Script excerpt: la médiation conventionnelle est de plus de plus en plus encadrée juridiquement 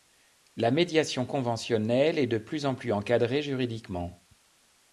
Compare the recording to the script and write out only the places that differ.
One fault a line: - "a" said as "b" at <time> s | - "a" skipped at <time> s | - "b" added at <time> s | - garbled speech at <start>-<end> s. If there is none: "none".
- "de plus" skipped at 2.6 s